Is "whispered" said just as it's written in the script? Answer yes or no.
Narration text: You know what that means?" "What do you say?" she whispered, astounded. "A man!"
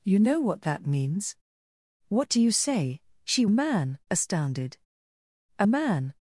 no